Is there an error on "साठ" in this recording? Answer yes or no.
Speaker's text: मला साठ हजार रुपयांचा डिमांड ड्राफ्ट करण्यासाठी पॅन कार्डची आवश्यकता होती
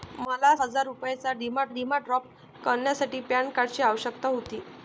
yes